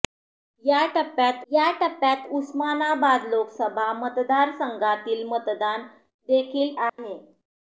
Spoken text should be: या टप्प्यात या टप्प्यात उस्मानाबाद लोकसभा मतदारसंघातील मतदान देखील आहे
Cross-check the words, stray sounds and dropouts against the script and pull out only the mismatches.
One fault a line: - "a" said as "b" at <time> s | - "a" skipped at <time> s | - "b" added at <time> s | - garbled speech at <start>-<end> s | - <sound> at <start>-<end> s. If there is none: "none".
- dropout at 6.9-7.0 s